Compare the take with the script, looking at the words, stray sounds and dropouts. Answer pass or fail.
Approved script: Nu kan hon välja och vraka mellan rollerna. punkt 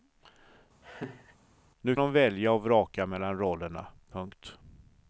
fail